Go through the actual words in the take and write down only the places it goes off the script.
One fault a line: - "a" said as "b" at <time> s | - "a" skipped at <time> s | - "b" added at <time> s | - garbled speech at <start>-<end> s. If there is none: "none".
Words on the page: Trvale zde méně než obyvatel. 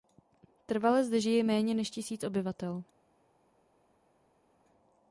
- "žije" added at 1.2 s
- "tisíc" added at 1.9 s